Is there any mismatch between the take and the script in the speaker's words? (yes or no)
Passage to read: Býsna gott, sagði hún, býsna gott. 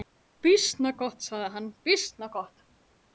yes